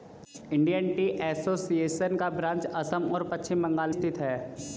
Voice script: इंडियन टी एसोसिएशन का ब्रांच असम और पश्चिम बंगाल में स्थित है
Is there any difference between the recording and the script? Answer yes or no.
yes